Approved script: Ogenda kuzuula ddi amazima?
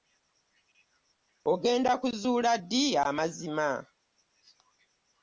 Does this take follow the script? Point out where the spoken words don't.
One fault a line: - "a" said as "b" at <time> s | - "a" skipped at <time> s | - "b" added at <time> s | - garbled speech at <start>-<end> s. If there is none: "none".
none